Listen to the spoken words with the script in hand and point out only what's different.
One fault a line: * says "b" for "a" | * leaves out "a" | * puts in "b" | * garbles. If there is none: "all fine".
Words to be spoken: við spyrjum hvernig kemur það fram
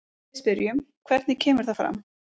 all fine